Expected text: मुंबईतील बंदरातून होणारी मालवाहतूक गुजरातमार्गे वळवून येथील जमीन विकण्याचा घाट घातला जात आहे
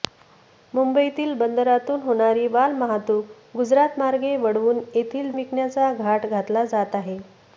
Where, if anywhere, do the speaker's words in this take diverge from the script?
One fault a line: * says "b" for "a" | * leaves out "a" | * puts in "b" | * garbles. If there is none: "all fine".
* leaves out "जमीन"